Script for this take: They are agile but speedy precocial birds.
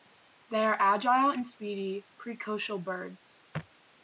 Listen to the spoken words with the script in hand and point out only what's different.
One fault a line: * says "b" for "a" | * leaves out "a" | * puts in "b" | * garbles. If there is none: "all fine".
* says "and" for "but"